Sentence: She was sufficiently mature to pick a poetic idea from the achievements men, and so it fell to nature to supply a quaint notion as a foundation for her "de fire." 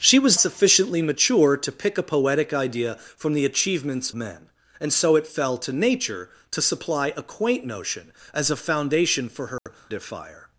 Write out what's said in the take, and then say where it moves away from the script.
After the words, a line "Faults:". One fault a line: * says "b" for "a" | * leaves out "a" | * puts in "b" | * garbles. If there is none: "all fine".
She was sufficiently mature to pick a poetic idea from the achievements men, and so it fell to nature to supply a quaint notion as a foundation for her "de fire."
Faults:
all fine